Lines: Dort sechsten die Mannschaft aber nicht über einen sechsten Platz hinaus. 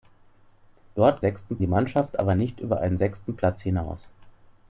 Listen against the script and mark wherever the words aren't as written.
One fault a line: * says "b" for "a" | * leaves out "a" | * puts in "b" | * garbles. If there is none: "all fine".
all fine